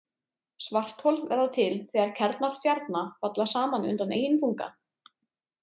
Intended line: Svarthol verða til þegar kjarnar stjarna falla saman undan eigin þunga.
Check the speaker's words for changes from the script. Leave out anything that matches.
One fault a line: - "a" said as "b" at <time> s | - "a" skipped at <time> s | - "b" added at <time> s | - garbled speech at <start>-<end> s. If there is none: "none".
none